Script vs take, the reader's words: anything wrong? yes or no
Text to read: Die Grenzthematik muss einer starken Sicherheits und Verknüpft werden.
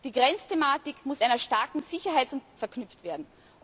no